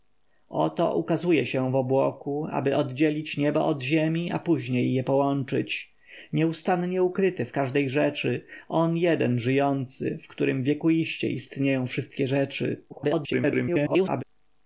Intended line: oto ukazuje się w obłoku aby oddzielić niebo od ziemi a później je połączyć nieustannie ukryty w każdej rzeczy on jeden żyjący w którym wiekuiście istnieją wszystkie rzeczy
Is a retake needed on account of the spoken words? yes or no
yes